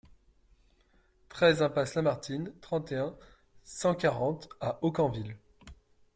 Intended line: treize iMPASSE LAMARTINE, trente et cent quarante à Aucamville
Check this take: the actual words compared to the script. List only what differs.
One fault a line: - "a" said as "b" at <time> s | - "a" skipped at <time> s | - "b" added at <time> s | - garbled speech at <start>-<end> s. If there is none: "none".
- "un" added at 3.0 s